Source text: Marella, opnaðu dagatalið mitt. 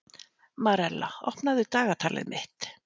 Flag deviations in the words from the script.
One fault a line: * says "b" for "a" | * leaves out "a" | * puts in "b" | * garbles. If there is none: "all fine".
all fine